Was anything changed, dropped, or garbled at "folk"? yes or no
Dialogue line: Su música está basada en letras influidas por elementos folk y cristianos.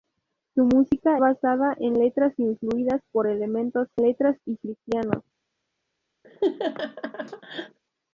yes